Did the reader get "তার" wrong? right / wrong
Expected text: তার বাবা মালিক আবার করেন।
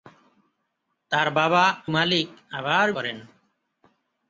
right